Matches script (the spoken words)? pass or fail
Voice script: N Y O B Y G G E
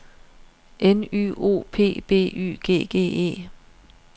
fail